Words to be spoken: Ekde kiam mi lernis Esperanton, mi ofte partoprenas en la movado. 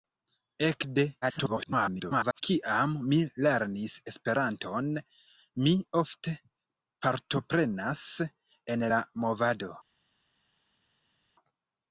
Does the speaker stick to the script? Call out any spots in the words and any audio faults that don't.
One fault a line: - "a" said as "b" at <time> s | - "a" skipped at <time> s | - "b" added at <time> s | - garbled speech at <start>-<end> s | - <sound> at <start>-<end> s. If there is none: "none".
- garbled speech at 1.2-2.4 s